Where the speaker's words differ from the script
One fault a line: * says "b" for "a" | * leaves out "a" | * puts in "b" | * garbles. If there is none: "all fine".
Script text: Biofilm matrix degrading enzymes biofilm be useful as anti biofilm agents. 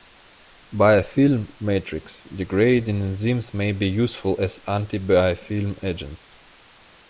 * says "may" for "biofilm"